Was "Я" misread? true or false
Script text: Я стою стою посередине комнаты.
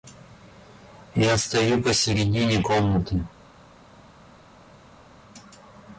false